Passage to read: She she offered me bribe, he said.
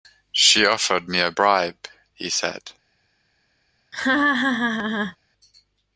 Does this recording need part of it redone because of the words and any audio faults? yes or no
yes